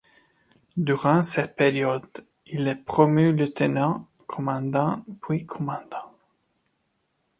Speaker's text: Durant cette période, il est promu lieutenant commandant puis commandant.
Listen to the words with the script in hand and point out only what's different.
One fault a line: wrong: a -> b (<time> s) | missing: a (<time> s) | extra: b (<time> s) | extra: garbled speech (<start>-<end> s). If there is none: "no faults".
no faults